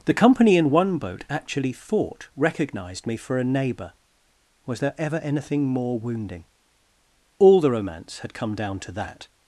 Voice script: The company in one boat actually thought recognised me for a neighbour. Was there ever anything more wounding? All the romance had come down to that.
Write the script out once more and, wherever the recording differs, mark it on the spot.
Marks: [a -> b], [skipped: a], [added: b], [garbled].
The company in one boat actually thought recognised me for a neighbour. Was there ever anything more wounding? All the romance had come down to that.